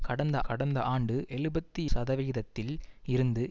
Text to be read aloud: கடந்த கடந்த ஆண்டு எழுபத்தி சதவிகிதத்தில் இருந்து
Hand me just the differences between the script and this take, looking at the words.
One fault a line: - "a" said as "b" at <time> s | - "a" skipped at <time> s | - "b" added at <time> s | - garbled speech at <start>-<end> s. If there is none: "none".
none